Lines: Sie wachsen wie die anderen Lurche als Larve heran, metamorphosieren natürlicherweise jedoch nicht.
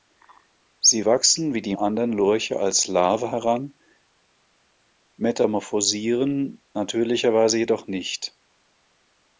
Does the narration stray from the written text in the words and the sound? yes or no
no